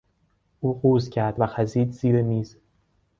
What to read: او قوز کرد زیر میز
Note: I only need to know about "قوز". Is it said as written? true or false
true